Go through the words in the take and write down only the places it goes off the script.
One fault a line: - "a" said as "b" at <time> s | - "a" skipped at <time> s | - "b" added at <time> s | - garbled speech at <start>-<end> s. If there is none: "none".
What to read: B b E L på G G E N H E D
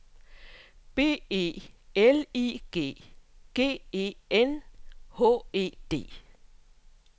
- "b" skipped at 1.2 s
- "på" said as "I" at 2.3 s